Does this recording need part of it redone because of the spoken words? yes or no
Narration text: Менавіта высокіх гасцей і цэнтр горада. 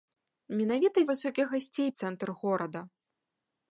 no